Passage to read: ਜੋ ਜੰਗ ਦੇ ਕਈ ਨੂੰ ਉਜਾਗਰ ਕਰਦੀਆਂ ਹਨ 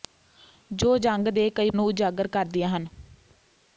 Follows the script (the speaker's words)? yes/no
yes